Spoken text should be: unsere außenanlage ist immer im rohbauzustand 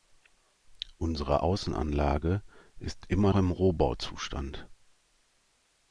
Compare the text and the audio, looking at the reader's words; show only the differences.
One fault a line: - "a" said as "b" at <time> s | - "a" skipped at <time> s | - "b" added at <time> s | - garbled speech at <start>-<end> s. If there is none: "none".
none